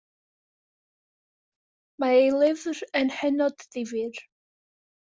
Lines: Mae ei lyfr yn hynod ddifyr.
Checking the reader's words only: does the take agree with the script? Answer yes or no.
yes